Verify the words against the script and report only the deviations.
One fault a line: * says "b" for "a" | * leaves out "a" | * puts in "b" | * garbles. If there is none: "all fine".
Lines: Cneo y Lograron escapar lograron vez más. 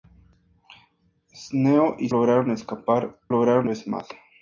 all fine